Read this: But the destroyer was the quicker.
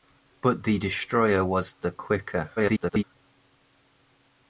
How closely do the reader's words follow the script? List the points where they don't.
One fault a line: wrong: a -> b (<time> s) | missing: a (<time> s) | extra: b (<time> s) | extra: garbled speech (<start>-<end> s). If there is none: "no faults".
extra: garbled speech (2.6-3.0 s)